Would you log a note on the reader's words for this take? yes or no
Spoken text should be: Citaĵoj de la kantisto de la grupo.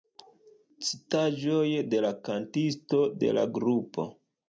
no